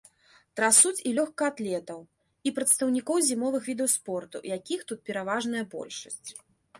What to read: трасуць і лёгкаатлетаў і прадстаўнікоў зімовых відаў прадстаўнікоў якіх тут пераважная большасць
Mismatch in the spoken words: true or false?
true